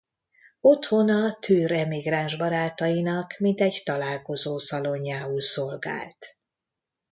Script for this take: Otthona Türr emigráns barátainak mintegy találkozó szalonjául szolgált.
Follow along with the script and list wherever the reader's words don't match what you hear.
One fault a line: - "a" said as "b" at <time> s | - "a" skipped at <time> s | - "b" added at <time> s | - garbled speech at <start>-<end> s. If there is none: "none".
none